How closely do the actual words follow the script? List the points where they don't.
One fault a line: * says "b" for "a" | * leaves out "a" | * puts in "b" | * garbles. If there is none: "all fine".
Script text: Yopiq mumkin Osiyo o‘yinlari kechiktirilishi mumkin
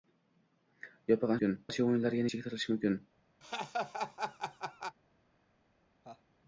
all fine